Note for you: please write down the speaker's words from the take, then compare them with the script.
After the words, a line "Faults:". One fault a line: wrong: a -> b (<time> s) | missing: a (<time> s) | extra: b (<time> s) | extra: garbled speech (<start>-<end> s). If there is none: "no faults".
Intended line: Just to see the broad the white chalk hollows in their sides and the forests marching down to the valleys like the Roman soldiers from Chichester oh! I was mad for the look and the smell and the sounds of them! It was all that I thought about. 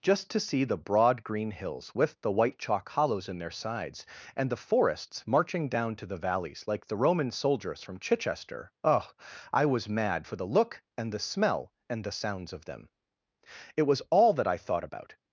Just to see the broad green hills with the white chalk hollows in their sides and the forests marching down to the valleys like the Roman soldiers from Chichester oh! I was mad for the look and the smell and the sounds of them! It was all that I thought about.
Faults:
extra: green hills with (1.2 s)